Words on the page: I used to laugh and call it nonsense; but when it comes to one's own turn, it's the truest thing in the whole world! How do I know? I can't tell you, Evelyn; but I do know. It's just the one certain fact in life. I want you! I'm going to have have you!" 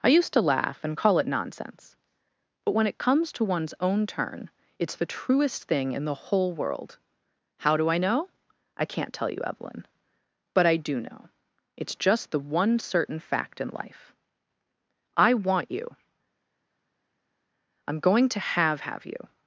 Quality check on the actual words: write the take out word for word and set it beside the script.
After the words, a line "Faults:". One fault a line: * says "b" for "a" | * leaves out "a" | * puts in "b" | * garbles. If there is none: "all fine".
I used to laugh and call it nonsense; but when it comes to one's own turn, it's the truest thing in the whole world! How do I know? I can't tell you, Evelyn; but I do know. It's just the one certain fact in life. I want you! I'm going to have have you!"
Faults:
all fine